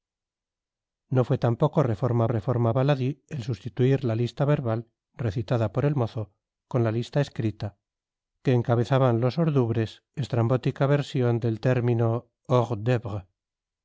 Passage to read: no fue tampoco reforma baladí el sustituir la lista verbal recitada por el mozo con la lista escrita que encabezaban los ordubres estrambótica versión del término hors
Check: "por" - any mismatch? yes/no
no